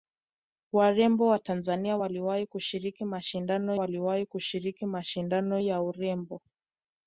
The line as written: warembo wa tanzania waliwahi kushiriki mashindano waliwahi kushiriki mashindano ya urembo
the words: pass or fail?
pass